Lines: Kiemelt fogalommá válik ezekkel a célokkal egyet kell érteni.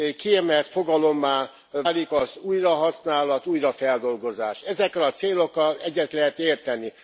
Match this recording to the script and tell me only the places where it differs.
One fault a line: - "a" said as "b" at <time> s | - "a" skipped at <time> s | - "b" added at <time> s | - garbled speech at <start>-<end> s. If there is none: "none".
- "az újrahasználat újrafeldolgozás" added at 2.1 s
- "kell" said as "lehet" at 6.1 s